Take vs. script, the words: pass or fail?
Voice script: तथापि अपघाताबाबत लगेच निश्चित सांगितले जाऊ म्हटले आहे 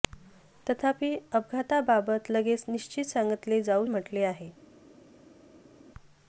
pass